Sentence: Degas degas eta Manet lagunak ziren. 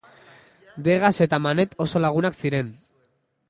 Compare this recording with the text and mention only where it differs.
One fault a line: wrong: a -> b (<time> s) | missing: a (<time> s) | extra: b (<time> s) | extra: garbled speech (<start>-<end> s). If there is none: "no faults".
missing: degas (1.1 s)
extra: oso (1.9 s)